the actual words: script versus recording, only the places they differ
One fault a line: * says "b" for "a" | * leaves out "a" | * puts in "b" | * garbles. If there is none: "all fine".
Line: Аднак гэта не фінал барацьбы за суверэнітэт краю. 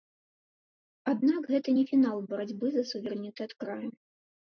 all fine